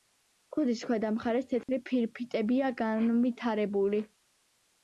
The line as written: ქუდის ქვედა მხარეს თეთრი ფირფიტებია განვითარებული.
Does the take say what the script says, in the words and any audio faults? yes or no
no